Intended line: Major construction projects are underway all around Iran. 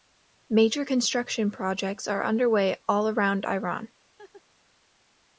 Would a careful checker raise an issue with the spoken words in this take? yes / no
no